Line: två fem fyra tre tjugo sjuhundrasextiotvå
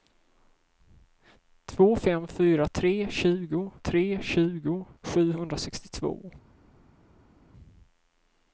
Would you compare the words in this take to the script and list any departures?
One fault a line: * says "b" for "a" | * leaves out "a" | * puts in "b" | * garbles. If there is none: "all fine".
* puts in "tre tjugo"